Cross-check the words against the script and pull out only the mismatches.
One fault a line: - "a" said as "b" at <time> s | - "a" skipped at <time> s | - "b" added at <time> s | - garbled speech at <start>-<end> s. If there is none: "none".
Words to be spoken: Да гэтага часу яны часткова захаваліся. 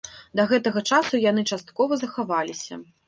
none